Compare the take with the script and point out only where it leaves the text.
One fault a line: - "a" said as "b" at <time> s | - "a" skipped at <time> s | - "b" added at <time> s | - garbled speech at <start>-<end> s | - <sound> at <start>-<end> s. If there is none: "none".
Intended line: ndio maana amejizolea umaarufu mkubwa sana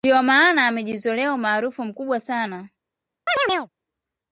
- chirp at 3.3-3.7 s